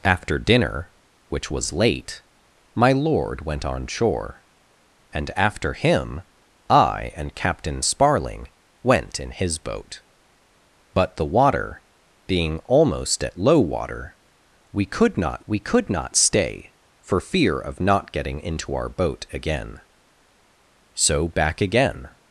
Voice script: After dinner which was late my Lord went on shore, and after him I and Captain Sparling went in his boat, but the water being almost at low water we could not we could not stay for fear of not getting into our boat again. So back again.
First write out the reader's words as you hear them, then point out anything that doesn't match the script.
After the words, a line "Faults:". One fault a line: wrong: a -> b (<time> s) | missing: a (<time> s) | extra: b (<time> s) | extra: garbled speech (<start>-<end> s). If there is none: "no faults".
After dinner which was late my Lord went on shore, and after him I and Captain Sparling went in his boat, but the water being almost at low water we could not we could not stay for fear of not getting into our boat again. So back again.
Faults:
no faults